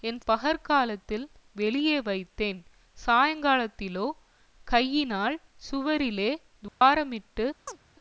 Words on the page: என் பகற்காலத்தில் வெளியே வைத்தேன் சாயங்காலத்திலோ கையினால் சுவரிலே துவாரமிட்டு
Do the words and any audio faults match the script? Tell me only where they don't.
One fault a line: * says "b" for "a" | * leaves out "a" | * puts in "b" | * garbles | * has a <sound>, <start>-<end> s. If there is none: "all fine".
* has a dropout, 6.7-6.8 s
* has a chirp, 7.7-7.8 s